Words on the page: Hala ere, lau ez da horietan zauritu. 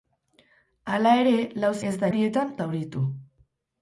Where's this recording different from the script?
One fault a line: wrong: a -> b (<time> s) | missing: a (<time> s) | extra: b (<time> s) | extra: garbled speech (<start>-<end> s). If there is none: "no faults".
no faults